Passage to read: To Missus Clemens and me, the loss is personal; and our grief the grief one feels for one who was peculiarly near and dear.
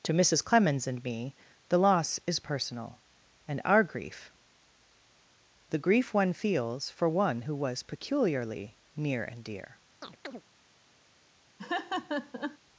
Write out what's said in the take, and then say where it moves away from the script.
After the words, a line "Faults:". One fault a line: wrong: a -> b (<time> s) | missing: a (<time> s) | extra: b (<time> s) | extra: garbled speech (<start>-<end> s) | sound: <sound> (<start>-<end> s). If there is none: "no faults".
To Missus Clemens and me, the loss is personal; and our grief the grief one feels for one who was peculiarly near and dear.
Faults:
sound: chirp (10.0-10.4 s)
sound: laugh (11.6-12.6 s)